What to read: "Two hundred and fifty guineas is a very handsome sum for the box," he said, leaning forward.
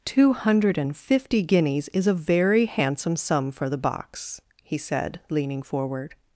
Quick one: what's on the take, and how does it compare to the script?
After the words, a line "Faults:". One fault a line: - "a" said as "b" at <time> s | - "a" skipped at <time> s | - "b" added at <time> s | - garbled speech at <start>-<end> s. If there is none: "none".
"Two hundred and fifty guineas is a very handsome sum for the box," he said, leaning forward.
Faults:
none